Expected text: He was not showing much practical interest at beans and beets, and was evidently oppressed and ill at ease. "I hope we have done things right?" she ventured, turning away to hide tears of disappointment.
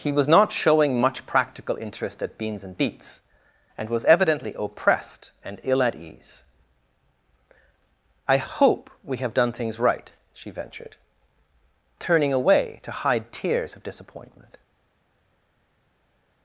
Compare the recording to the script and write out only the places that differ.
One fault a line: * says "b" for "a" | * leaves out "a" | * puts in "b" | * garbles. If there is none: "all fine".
all fine